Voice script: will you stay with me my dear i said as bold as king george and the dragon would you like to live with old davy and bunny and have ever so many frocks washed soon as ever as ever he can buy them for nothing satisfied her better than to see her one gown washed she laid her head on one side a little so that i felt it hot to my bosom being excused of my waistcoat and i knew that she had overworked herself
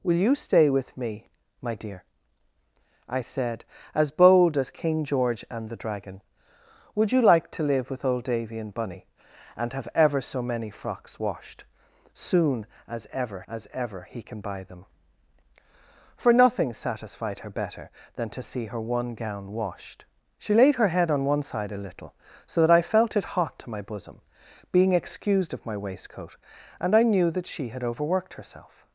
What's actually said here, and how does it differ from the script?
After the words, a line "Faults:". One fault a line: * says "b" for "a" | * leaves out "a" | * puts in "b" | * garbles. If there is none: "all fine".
will you stay with me my dear i said as bold as king george and the dragon would you like to live with old davy and bunny and have ever so many frocks washed soon as ever as ever he can buy them for nothing satisfied her better than to see her one gown washed she laid her head on one side a little so that i felt it hot to my bosom being excused of my waistcoat and i knew that she had overworked herself
Faults:
all fine